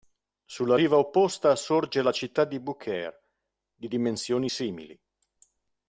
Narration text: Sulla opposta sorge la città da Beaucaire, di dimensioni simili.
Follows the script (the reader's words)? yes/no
no